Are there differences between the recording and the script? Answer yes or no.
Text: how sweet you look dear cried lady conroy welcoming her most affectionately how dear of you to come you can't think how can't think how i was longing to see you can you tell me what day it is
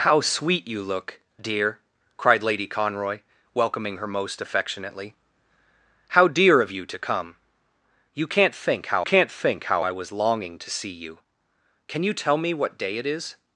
no